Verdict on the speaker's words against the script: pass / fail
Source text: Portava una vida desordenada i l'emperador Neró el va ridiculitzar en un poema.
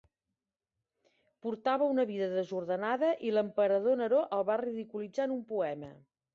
pass